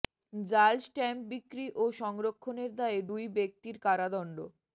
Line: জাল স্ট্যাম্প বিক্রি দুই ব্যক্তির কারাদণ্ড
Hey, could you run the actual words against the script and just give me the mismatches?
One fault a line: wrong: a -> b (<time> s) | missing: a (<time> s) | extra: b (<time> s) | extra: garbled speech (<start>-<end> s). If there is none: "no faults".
extra: ও সংরক্ষণের দায়ে (1.8 s)